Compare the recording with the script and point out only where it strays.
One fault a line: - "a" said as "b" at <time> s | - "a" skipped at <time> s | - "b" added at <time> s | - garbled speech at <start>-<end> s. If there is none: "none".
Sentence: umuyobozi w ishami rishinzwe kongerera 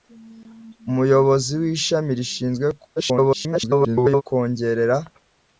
- garbled speech at 3.0-4.2 s